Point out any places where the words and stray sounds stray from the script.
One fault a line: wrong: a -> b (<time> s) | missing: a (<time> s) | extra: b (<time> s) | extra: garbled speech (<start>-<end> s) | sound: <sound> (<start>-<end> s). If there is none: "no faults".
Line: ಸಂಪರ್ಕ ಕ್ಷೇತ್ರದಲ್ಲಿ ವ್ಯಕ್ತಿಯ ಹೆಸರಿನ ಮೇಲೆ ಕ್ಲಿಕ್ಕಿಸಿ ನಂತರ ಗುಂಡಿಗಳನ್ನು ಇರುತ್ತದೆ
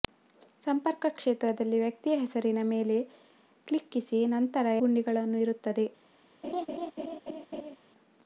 sound: laugh (6.4-7.8 s)